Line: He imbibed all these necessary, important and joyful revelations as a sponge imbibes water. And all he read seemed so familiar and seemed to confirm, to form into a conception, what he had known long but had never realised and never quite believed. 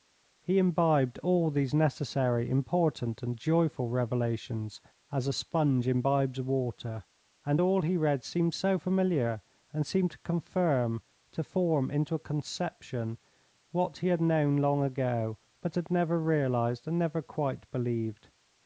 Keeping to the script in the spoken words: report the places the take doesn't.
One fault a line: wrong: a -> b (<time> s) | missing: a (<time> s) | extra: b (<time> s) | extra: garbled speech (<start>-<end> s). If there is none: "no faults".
extra: ago (14.9 s)